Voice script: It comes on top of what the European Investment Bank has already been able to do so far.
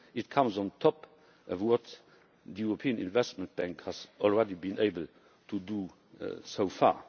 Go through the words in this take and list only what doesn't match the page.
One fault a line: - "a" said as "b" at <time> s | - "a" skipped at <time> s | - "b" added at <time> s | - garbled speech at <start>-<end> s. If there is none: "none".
none